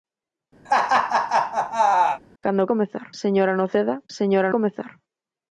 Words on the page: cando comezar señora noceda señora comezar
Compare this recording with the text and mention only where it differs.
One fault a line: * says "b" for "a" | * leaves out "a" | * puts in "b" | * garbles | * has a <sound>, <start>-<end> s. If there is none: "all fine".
* has a laugh, 0.7-2.2 s